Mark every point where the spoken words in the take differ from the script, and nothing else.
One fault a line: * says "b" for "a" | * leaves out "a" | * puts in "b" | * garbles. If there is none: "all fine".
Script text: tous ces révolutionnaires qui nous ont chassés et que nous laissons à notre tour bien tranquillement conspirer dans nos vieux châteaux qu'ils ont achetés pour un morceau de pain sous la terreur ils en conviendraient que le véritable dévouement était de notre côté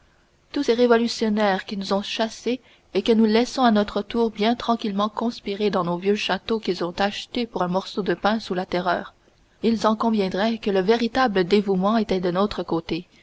all fine